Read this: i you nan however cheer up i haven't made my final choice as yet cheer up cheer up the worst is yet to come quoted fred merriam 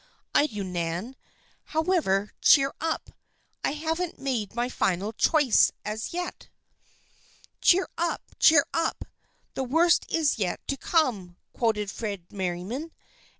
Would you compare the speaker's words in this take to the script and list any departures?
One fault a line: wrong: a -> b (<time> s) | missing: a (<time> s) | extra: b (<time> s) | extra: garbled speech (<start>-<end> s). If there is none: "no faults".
no faults